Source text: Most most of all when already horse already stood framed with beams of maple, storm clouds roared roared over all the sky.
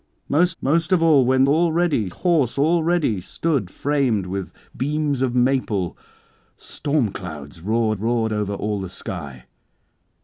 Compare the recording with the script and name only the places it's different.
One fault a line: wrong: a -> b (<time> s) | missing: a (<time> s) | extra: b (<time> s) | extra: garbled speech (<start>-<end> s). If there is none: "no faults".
no faults